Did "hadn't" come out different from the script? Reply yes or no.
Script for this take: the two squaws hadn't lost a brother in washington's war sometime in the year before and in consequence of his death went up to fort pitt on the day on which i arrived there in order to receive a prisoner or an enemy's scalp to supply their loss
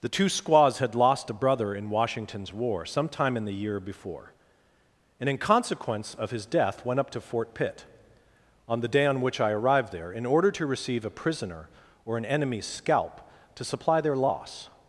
yes